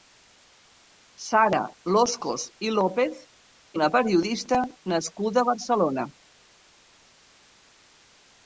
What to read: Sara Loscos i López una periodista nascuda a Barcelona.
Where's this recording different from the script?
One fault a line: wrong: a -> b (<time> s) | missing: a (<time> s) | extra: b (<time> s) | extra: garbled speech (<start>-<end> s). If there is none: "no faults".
no faults